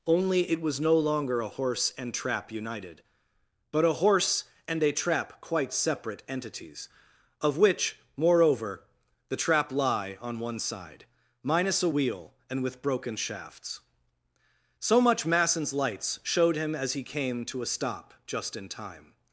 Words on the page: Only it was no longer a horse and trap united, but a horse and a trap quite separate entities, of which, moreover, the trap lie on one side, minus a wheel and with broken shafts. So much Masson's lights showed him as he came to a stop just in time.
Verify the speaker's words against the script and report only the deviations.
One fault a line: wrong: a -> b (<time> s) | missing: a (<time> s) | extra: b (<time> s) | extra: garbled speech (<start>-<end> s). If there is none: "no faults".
no faults